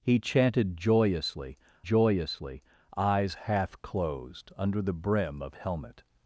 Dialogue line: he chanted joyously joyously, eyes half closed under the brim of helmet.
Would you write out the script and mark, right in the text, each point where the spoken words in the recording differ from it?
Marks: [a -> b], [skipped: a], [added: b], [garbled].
he chanted joyously joyously, eyes half closed under the brim of helmet.